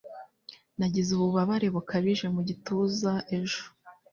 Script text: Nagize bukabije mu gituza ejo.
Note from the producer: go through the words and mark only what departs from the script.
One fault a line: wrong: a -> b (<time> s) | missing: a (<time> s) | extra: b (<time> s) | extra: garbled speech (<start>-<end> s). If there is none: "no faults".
extra: ububabare (1.1 s)